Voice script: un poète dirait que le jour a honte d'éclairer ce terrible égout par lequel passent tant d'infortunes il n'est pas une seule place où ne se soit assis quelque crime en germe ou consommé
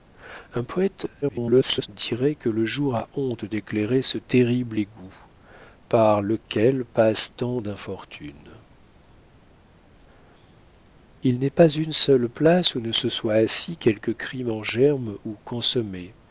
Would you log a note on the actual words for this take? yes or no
yes